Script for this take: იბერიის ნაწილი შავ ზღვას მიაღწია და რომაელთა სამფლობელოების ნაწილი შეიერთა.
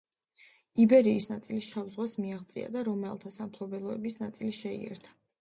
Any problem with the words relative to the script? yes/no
no